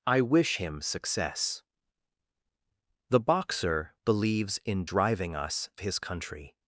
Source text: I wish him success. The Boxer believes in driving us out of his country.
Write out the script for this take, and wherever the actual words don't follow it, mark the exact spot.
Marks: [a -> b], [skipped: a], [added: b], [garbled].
I wish him success. The Boxer believes in driving us [skipped: out of] his country.